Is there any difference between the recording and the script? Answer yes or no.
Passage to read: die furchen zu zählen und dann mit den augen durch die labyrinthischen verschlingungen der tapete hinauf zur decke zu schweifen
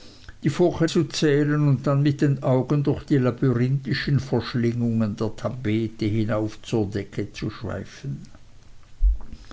no